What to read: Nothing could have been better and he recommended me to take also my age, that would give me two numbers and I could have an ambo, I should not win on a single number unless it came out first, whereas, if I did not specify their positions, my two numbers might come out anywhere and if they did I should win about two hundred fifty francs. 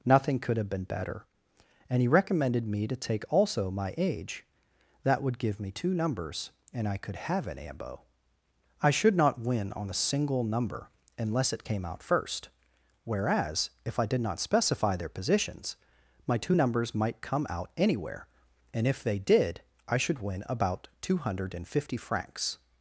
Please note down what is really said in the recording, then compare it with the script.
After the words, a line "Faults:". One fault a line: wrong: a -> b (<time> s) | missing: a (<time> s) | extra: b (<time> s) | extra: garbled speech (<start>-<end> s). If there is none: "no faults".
Nothing could have been better and he recommended me to take also my age, that would give me two numbers and I could have an ambo, I should not win on a single number unless it came out first, whereas, if I did not specify their positions, my two numbers might come out anywhere and if they did I should win about two hundred fifty francs.
Faults:
no faults